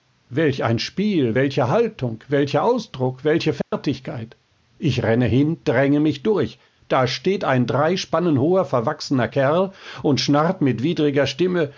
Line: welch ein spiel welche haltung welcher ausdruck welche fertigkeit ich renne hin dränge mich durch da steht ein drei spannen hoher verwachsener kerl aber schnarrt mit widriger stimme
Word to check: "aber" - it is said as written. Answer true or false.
false